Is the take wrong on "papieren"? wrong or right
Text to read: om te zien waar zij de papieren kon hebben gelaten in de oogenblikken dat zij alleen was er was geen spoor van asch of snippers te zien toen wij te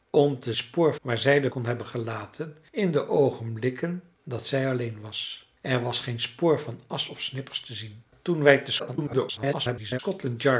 wrong